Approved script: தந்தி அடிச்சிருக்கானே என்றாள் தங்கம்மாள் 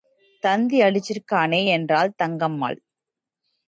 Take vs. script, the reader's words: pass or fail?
pass